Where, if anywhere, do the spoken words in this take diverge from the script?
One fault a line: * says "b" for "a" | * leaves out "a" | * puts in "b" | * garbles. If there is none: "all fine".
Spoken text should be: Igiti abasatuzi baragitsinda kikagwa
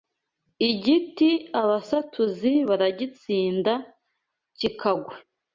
all fine